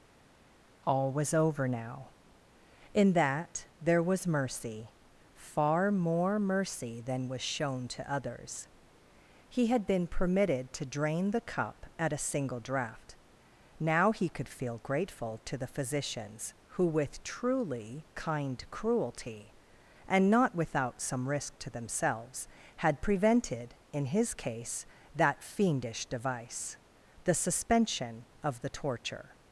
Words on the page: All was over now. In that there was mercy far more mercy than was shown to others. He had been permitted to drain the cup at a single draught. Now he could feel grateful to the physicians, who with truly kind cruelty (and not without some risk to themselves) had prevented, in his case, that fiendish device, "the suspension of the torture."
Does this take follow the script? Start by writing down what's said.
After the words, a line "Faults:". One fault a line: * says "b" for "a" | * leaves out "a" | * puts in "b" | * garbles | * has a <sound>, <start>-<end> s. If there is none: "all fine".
All was over now. In that there was mercy far more mercy than was shown to others. He had been permitted to drain the cup at a single draught. Now he could feel grateful to the physicians, who with truly kind cruelty (and not without some risk to themselves) had prevented, in his case, that fiendish device, "the suspension of the torture."
Faults:
all fine